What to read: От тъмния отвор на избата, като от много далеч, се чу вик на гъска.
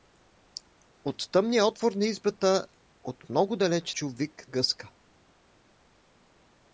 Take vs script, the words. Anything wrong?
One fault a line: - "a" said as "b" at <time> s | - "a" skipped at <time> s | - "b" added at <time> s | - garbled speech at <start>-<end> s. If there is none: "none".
- "като" skipped at 2.7 s
- "се" skipped at 3.9 s
- "на" skipped at 4.5 s